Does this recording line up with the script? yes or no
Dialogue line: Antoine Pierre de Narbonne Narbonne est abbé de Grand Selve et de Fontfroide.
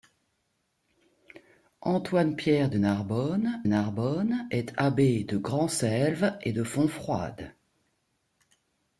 yes